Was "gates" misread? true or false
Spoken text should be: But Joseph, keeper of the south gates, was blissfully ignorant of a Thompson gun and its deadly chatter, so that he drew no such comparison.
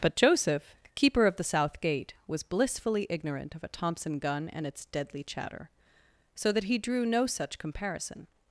true